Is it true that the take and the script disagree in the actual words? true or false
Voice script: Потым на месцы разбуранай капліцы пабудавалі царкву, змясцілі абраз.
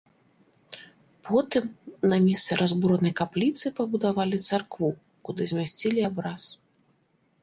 true